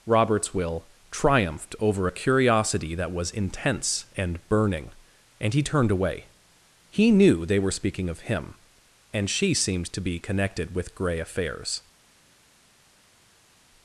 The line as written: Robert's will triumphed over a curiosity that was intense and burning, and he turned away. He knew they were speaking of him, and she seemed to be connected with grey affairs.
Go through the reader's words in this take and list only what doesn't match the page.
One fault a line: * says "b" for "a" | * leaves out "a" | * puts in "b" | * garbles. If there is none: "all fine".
all fine